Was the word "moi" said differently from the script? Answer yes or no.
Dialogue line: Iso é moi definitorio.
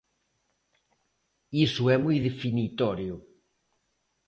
no